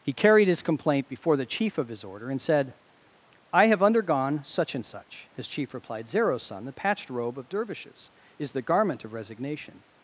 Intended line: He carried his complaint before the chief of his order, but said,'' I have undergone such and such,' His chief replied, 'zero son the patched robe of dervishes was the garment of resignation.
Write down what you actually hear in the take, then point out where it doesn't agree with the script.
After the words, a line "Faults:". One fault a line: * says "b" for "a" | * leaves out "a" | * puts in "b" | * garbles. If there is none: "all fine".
He carried his complaint before the chief of his order, and said,'' I have undergone such and such,' His chief replied, 'zero son the patched robe of dervishes is the garment of resignation.
Faults:
* says "and" for "but"
* says "is" for "was"